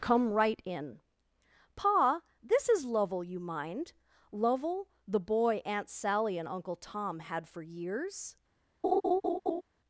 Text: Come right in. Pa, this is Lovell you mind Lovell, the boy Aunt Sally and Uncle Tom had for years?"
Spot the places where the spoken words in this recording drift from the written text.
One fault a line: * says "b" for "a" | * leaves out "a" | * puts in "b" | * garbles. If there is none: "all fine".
all fine